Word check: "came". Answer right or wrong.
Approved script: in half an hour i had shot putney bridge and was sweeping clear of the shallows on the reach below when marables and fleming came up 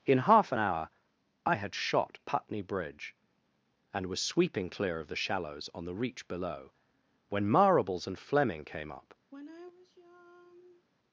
right